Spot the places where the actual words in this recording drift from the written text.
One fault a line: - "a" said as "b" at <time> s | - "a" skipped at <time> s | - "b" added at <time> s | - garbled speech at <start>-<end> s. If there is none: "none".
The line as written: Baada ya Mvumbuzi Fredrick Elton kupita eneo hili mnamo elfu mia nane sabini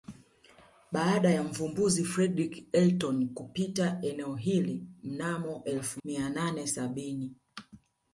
none